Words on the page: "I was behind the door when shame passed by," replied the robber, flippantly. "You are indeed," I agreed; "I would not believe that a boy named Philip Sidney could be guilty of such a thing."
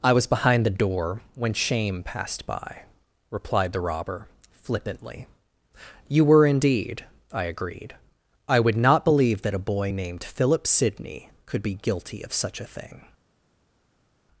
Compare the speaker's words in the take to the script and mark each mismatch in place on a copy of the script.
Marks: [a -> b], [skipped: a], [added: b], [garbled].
"I was behind the door when shame passed by," replied the robber, flippantly. "You [are -> were] indeed," I agreed; "I would not believe that a boy named Philip Sidney could be guilty of such a thing."